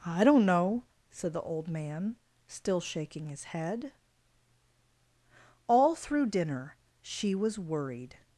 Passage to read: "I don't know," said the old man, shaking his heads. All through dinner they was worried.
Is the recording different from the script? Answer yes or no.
yes